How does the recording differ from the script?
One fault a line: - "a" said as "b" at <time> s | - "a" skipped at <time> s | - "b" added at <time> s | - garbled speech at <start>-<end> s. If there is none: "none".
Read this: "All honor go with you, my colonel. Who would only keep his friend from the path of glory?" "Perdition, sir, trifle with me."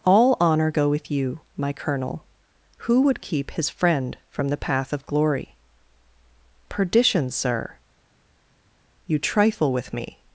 - "only" skipped at 3.2 s
- "you" added at 9.1 s